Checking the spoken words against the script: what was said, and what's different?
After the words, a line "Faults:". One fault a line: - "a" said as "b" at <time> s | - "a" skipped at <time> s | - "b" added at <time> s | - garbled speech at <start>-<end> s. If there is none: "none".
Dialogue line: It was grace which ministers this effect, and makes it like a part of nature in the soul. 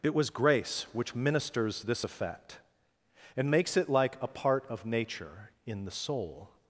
It was grace which ministers this effect, and makes it like a part of nature in the soul.
Faults:
none